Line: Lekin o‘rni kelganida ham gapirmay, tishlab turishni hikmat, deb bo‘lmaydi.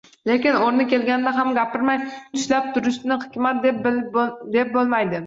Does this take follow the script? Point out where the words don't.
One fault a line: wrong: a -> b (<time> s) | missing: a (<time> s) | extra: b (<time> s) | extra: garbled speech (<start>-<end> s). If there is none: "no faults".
no faults